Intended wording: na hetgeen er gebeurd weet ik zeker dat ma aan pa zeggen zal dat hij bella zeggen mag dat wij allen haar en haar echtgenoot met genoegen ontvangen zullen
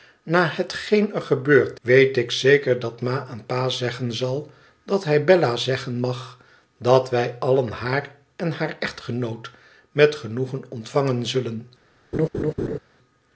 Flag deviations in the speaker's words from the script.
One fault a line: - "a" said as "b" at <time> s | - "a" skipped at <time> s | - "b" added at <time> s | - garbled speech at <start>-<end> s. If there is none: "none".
none